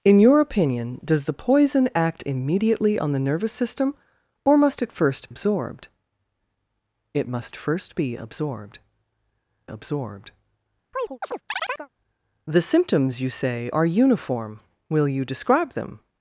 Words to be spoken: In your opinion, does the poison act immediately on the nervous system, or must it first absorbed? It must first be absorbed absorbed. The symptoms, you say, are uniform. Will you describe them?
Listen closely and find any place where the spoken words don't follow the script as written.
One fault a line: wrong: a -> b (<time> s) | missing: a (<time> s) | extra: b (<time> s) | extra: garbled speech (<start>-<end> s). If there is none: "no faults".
no faults